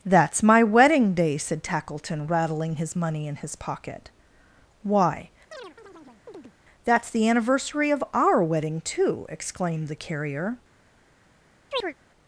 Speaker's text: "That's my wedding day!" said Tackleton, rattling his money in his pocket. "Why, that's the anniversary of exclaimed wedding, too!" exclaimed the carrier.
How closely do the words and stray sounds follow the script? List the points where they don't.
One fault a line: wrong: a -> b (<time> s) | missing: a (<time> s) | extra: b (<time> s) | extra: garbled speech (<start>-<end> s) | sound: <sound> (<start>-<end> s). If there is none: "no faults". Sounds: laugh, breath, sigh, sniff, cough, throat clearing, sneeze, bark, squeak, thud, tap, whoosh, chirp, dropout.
sound: chirp (5.5-6.5 s)
wrong: exclaimed -> our (8.1 s)
sound: chirp (11.7-11.9 s)